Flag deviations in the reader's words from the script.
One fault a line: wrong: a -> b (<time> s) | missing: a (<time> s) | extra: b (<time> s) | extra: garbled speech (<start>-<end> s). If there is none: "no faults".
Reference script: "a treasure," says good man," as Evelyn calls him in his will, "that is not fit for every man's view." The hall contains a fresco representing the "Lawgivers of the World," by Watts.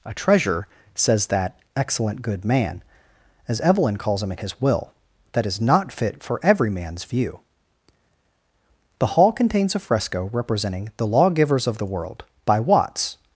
extra: that excellent (1.3 s)